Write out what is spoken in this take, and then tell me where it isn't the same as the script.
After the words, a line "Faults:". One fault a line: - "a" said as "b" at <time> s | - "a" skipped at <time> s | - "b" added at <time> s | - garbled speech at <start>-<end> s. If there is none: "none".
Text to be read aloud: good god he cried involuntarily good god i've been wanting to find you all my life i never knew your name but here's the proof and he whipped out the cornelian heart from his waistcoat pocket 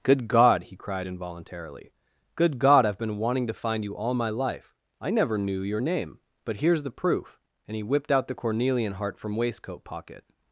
good god he cried involuntarily good god i've been wanting to find you all my life i never knew your name but here's the proof and he whipped out the cornelian heart from waistcoat pocket
Faults:
- "his" skipped at 9.4 s